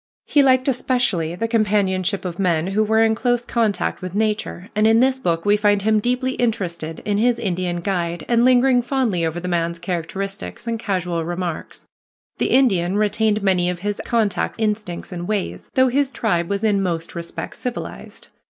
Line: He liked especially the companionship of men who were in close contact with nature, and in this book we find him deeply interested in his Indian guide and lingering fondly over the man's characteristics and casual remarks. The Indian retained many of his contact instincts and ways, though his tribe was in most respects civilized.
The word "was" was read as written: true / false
true